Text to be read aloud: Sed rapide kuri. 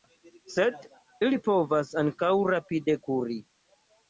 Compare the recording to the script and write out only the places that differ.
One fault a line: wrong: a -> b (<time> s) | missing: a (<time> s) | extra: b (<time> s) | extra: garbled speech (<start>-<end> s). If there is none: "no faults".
extra: ili povas ankaŭ (1.3 s)